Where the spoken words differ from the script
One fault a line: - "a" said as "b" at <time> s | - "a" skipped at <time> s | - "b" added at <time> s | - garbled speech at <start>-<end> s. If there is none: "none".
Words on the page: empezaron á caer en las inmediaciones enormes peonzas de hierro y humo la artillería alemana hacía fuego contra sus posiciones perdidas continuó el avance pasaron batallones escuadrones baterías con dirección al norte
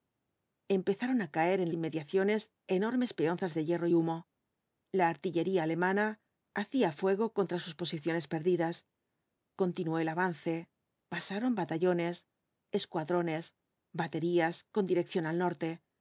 - "las" skipped at 1.7 s